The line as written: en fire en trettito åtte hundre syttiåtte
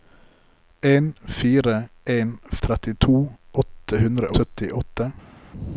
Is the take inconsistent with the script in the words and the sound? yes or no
no